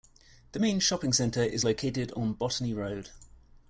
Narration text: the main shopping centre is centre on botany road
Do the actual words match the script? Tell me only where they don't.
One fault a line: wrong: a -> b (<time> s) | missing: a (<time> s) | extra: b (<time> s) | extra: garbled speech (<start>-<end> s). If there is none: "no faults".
wrong: centre -> located (1.6 s)